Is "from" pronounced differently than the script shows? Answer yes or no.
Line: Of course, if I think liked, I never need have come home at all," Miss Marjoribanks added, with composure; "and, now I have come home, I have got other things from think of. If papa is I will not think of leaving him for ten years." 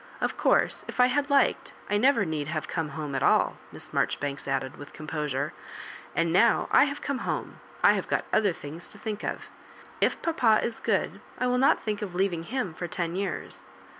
yes